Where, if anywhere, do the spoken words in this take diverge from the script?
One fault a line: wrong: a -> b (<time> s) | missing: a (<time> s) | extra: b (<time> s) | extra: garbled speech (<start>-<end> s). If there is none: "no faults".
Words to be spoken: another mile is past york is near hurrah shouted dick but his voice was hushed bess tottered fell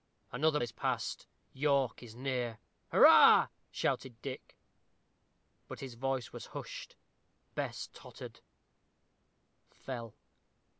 missing: mile (0.6 s)